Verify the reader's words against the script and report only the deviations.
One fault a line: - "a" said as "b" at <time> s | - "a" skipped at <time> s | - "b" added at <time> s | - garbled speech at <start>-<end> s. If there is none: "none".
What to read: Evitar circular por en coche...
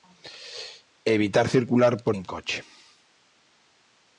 none